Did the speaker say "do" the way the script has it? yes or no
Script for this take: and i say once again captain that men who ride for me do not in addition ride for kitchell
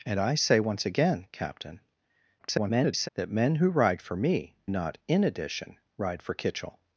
no